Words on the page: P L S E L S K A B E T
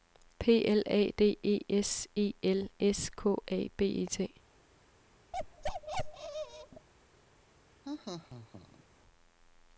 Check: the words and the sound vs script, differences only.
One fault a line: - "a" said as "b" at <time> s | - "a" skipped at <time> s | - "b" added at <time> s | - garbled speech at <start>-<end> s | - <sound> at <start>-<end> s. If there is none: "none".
- "A D E" added at 0.9 s
- bark at 5.3-6.9 s
- laugh at 7.8-8.8 s